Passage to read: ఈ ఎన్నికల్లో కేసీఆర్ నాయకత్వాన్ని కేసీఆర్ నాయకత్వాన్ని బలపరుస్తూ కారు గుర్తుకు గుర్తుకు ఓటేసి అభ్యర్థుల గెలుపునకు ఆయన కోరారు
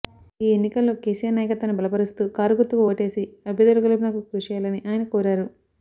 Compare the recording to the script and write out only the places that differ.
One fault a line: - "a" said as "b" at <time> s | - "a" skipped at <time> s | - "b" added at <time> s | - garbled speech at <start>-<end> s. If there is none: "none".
- "కేసీఆర్ నాయకత్వాన్ని" skipped at 1.8 s
- "గుర్తుకు" skipped at 2.8 s
- "కృషి చేయాలని" added at 4.3 s